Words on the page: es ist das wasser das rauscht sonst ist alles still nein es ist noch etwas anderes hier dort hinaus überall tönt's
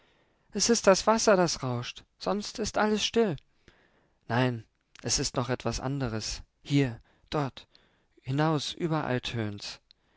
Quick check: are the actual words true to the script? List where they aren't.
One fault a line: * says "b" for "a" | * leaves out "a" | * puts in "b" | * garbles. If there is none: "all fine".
all fine